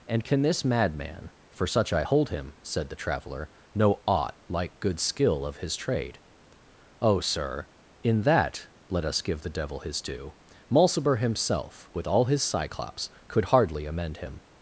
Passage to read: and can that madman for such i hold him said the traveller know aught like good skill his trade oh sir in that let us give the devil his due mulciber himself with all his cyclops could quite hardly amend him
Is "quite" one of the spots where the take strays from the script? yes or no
yes